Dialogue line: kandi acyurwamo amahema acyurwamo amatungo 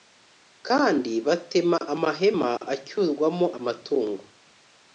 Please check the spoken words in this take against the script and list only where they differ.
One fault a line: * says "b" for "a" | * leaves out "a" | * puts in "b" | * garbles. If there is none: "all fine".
* says "batema" for "acyurwamo"